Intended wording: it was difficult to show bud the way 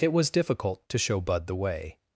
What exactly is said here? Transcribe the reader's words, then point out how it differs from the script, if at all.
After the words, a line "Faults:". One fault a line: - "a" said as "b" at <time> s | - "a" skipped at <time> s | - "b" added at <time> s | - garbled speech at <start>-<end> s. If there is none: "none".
it was difficult to show bud the way
Faults:
none